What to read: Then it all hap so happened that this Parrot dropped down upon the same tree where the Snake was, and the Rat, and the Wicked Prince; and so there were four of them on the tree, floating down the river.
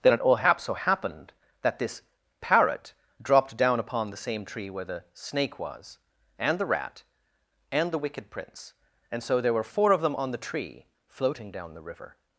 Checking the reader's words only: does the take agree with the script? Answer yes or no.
yes